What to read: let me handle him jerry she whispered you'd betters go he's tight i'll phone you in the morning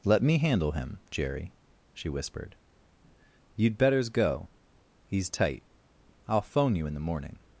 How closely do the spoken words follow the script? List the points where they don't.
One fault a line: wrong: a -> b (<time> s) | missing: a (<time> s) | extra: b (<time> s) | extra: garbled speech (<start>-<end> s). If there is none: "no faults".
no faults